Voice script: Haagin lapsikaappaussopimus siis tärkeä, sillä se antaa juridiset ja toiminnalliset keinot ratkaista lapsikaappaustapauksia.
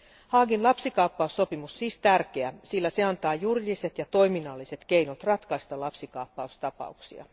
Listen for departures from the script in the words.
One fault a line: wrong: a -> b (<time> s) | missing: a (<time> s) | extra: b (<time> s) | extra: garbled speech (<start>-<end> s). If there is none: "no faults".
no faults